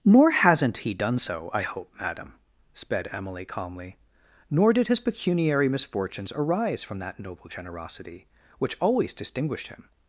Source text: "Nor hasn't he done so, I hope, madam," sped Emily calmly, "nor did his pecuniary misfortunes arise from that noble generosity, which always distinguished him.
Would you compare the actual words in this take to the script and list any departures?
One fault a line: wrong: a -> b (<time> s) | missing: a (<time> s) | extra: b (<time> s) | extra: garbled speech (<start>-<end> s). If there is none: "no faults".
no faults